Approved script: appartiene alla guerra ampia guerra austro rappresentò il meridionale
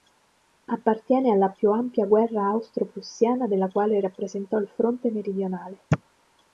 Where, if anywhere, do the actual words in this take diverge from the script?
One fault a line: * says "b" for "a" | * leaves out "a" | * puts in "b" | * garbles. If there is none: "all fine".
* says "più" for "guerra"
* puts in "prussiana della quale"
* puts in "fronte"